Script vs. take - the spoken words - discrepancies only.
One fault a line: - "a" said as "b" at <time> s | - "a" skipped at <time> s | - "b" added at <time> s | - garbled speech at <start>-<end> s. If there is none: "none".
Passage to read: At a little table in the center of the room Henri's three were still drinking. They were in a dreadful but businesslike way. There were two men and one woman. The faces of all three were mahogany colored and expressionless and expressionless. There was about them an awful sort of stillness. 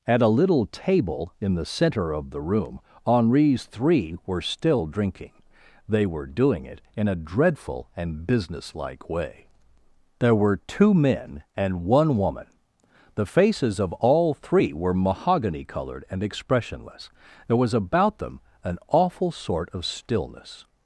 - "doing it" added at 6.2 s
- "but" said as "and" at 8.0 s
- "and expressionless" skipped at 17.1 s